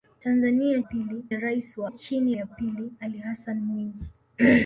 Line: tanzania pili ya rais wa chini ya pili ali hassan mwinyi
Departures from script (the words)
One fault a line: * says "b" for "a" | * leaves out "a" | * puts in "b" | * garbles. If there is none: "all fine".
all fine